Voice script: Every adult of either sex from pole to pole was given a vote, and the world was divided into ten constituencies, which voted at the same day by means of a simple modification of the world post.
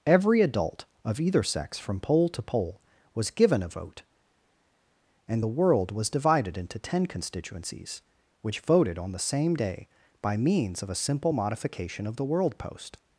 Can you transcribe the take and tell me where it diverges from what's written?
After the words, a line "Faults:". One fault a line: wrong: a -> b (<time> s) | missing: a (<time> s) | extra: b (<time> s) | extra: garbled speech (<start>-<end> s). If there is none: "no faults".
Every adult of either sex from pole to pole was given a vote, and the world was divided into ten constituencies, which voted on the same day by means of a simple modification of the world post.
Faults:
wrong: at -> on (9.0 s)